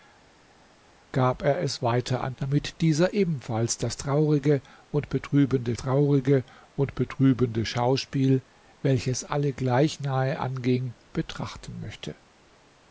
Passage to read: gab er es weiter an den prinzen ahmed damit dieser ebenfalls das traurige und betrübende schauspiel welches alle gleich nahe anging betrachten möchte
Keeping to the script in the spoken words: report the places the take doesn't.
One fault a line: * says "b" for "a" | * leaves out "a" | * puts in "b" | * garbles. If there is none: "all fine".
* leaves out "den prinzen ahmed"
* puts in "traurige und betrübende"